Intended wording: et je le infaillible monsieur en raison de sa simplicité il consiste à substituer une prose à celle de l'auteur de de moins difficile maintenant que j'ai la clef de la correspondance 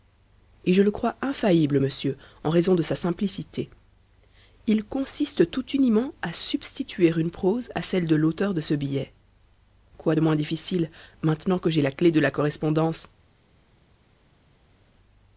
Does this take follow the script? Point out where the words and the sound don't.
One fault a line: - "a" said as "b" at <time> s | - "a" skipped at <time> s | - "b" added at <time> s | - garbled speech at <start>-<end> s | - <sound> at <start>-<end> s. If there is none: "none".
- "crois" added at 0.9 s
- "tout uniment" added at 5.5 s
- "ce billet quoi" added at 8.6 s